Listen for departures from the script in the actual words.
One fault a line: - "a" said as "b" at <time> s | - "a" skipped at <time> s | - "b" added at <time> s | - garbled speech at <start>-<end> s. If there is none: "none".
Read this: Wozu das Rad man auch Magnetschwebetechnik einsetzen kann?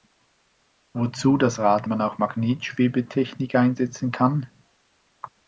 none